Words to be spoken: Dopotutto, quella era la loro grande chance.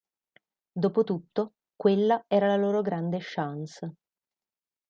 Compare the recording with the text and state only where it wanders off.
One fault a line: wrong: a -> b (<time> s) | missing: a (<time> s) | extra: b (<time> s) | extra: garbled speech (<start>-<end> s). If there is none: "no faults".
no faults